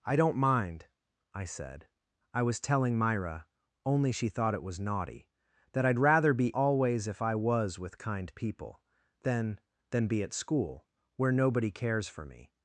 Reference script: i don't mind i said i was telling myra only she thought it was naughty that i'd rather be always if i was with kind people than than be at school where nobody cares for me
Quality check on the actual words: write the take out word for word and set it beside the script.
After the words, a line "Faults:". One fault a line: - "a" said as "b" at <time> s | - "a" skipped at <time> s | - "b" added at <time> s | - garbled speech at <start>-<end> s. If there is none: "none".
i don't mind i said i was telling myra only she thought it was naughty that i'd rather be always if i was with kind people than than be at school where nobody cares for me
Faults:
none